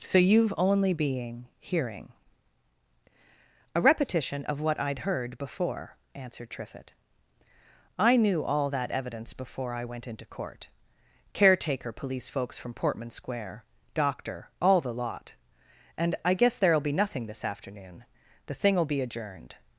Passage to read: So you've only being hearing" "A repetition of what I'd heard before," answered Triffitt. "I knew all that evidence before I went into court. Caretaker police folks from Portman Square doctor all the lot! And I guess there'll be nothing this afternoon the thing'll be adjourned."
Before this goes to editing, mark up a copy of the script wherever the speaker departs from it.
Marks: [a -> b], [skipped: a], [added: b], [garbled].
So you've only being hearing" "A repetition of what I'd heard before," answered Triffitt. "I knew all that evidence before I went into court. Caretaker police folks from Portman Square doctor all the lot! And I guess there'll be nothing this afternoon the thing'll be adjourned."